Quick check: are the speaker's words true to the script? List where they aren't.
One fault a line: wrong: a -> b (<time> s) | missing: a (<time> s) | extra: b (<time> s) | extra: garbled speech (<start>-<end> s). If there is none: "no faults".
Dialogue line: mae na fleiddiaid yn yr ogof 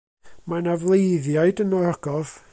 no faults